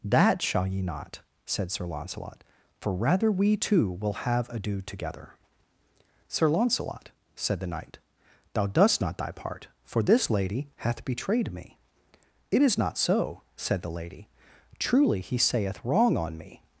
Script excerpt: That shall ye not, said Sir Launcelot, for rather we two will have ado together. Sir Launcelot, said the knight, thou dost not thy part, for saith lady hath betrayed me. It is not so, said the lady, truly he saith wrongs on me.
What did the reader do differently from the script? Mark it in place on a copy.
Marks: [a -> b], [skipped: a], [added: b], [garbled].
That shall ye not, said Sir Launcelot, for rather we two will have ado together. Sir Launcelot, said the knight, thou dost not thy part, for [saith -> this] lady hath betrayed me. It is not so, said the lady, truly he saith [wrongs -> wrong] on me.